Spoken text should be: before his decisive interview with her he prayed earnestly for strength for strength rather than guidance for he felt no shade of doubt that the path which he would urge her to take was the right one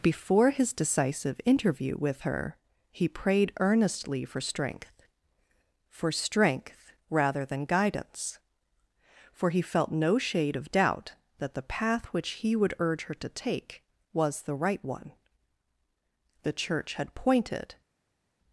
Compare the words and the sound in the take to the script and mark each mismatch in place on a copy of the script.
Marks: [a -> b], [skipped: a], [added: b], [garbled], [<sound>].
before his decisive interview with her he prayed earnestly for strength for strength rather than guidance for he felt no shade of doubt that the path which he would urge her to take was the right one [added: the church had pointed]